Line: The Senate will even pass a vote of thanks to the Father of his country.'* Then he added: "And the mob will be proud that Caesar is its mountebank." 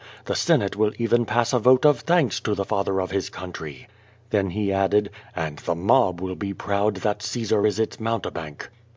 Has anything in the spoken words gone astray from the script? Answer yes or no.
no